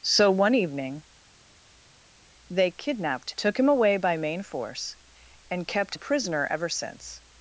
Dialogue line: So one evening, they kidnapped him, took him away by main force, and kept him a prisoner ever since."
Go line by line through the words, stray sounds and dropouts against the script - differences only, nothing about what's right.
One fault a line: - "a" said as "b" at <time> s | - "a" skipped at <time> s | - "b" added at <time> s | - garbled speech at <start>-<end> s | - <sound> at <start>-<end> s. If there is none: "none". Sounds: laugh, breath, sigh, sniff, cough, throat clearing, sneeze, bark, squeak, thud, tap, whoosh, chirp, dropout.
- "him" skipped at 3.3 s
- "him" skipped at 6.0 s